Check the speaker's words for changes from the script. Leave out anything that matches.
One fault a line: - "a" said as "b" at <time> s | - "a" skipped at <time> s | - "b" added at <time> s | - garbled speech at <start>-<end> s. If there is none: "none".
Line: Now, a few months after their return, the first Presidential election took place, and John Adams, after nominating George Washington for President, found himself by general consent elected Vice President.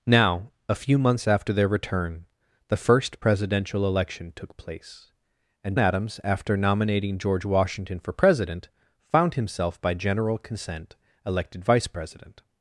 - "John" skipped at 5.8 s